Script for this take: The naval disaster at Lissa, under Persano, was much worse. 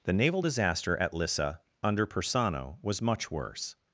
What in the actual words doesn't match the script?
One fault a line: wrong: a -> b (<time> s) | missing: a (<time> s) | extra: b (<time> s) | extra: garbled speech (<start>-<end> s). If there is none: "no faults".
no faults